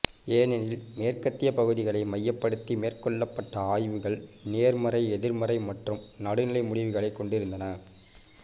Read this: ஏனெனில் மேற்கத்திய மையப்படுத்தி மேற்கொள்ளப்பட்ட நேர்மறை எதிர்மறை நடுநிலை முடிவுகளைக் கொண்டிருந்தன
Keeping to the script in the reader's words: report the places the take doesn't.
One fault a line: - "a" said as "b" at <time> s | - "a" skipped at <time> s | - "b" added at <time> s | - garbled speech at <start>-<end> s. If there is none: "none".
- "பகுதிகளை" added at 1.5 s
- "ஆய்வுகள்" added at 3.7 s
- "மற்றும்" added at 5.7 s